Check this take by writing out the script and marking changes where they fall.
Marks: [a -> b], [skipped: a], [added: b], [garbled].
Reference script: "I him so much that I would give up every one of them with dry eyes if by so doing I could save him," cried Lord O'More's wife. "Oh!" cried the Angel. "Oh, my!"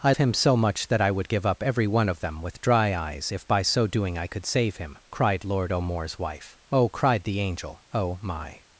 "I him so much that I would give up every one of them with dry eyes if by so doing I could save him," cried Lord O'More's wife. "Oh!" cried the Angel. "Oh, my!"